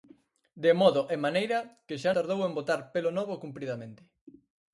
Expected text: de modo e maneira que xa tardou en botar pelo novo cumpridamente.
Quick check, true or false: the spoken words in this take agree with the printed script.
true